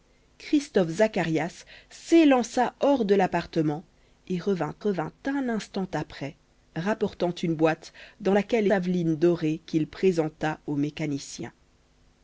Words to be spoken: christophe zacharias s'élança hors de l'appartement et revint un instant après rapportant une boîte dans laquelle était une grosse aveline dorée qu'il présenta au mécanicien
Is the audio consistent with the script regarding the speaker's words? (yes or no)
no